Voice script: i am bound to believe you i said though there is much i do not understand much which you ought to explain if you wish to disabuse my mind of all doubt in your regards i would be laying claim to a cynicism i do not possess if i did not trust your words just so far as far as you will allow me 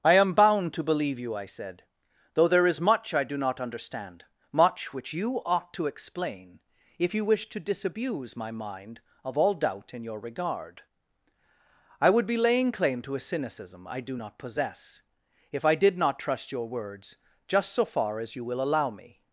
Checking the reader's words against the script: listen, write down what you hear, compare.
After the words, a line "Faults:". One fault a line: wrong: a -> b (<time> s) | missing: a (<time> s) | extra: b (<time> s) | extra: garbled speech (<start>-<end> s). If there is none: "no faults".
i am bound to believe you i said though there is much i do not understand much which you ought to explain if you wish to disabuse my mind of all doubt in your regard i would be laying claim to a cynicism i do not possess if i did not trust your words just so far as you will allow me
Faults:
wrong: regards -> regard (10.2 s)
missing: far as (18.4 s)